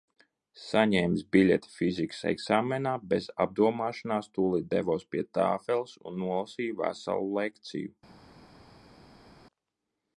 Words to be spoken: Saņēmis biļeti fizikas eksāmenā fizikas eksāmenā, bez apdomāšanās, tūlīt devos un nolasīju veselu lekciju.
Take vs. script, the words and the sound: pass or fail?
fail